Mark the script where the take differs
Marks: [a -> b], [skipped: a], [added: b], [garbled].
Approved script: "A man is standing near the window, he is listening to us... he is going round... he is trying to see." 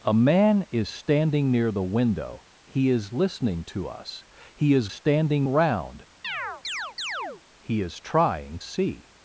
"A man is standing near the window, he is listening to us... he is [going -> standing] round... he is trying [skipped: to] see."